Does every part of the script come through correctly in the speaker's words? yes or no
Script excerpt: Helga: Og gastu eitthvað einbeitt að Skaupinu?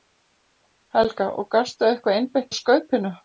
yes